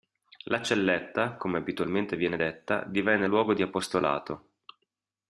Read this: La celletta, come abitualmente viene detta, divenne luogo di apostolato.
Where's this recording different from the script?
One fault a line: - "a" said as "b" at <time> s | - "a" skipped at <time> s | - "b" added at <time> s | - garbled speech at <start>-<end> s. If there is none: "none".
none